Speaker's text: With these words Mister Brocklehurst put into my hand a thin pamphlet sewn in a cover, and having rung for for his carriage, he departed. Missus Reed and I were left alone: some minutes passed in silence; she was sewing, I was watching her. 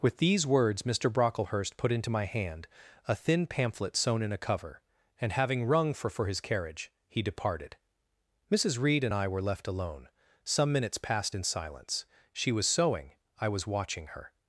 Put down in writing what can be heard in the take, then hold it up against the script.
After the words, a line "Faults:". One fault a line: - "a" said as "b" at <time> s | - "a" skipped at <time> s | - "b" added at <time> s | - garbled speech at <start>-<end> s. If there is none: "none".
With these words Mister Brocklehurst put into my hand a thin pamphlet sewn in a cover, and having rung for for his carriage, he departed. Missus Reed and I were left alone: some minutes passed in silence; she was sewing, I was watching her.
Faults:
none